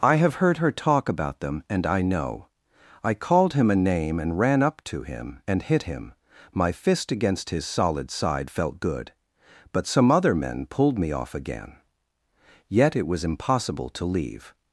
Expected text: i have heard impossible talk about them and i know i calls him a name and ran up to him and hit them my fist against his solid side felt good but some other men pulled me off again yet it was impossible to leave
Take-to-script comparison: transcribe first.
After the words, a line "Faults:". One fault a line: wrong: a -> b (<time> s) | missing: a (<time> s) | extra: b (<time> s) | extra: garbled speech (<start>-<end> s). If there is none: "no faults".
i have heard her talk about them and i know i called him a name and ran up to him and hit him my fist against his solid side felt good but some other men pulled me off again yet it was impossible to leave
Faults:
wrong: impossible -> her (0.6 s)
wrong: calls -> called (3.1 s)
wrong: them -> him (5.8 s)